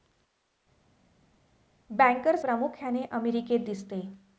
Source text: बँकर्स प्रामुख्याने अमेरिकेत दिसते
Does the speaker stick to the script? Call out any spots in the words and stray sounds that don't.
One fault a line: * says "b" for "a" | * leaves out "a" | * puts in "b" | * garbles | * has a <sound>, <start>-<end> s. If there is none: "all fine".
all fine